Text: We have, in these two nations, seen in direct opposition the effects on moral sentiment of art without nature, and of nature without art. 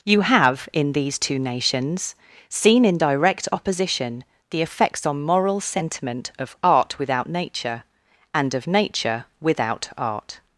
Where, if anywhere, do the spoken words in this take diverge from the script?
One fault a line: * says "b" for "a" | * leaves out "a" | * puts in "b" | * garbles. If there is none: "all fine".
* says "You" for "We"